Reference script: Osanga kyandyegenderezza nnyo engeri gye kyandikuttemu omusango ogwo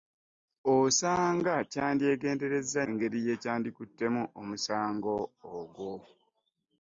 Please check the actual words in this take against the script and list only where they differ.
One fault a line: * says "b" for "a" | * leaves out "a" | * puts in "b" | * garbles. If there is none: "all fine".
* leaves out "nnyo"